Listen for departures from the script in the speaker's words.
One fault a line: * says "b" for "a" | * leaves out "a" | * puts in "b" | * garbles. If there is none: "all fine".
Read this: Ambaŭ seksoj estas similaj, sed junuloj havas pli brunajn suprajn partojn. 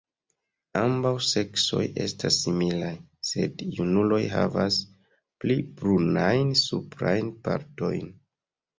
all fine